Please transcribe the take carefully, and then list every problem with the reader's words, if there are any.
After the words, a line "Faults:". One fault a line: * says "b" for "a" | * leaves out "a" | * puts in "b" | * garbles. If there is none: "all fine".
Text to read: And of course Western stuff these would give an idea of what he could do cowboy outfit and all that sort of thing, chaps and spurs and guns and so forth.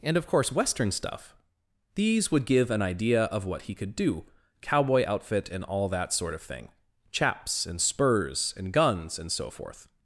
And of course Western stuff these would give an idea of what he could do cowboy outfit and all that sort of thing, chaps and spurs and guns and so forth.
Faults:
all fine